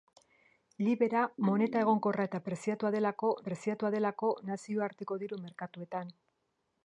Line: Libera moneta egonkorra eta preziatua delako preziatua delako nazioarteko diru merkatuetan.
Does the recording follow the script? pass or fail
pass